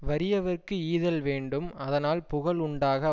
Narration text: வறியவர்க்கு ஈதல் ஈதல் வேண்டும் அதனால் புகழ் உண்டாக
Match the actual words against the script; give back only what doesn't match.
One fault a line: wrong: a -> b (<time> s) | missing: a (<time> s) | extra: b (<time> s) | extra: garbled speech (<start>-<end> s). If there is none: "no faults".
missing: ஈதல் (1.2 s)